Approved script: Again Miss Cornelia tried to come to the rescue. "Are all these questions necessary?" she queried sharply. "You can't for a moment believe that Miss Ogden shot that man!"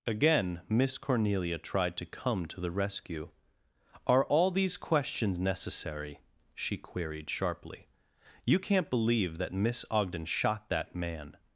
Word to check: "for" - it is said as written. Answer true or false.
false